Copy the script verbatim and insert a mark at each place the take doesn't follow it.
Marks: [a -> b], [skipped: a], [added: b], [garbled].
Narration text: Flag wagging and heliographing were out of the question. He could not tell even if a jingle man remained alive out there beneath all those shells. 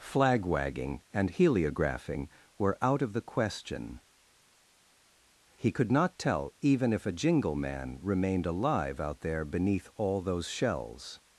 Flag wagging and heliographing were out of the question. He could not tell even if a jingle man remained alive out there beneath all those shells.